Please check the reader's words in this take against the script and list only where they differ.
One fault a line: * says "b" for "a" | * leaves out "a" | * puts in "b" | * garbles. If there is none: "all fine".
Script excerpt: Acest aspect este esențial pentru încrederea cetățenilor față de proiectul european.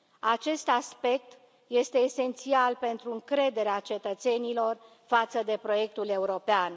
all fine